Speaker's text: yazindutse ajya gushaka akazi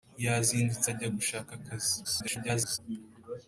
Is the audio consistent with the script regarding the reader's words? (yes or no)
no